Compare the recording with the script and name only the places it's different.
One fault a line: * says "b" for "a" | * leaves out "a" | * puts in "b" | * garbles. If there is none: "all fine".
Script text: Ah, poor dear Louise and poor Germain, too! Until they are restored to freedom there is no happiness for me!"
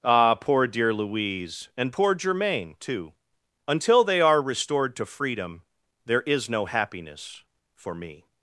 all fine